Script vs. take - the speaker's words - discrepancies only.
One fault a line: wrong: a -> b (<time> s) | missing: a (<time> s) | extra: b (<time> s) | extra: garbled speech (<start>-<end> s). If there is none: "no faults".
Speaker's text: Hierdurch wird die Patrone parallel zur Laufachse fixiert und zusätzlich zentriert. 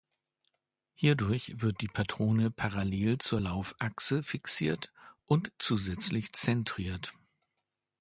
no faults